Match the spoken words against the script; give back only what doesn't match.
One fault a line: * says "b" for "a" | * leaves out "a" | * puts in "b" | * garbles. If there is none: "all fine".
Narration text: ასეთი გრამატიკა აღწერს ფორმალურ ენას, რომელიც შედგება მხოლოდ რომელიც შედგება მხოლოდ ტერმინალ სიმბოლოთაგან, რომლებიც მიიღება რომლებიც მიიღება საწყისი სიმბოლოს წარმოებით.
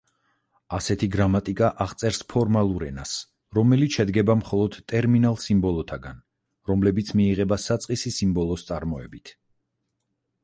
* leaves out "რომელიც შედგება მხოლოდ"
* leaves out "რომლებიც მიიღება"